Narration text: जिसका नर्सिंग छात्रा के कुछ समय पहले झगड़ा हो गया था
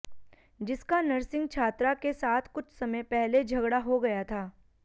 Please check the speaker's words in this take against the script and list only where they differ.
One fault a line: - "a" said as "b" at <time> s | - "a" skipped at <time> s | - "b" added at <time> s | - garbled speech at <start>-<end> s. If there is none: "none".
- "साथ" added at 2.1 s